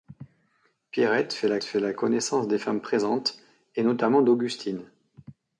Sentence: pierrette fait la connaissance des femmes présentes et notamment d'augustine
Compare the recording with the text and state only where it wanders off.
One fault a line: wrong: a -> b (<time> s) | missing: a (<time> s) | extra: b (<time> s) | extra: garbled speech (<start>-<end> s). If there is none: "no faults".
extra: fait la (1.6 s)